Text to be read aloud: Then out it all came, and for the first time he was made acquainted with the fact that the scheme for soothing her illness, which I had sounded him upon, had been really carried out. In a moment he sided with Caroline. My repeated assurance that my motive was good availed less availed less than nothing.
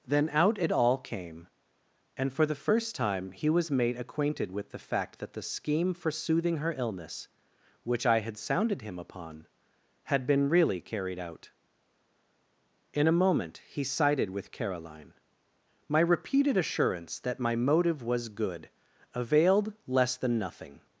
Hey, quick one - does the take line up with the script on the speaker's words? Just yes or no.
no